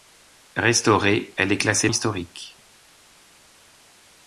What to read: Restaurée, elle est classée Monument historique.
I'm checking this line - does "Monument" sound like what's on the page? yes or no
no